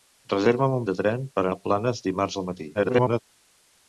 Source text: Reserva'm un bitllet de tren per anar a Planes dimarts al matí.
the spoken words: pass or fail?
fail